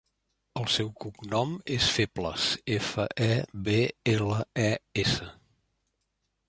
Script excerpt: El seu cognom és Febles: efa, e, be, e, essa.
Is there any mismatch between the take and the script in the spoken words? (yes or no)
yes